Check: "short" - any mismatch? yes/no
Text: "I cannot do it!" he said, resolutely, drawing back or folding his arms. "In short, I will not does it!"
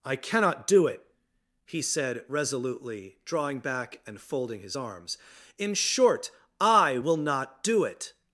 no